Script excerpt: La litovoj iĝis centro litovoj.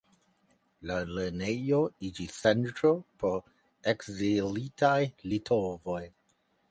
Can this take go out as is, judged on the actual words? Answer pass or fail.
fail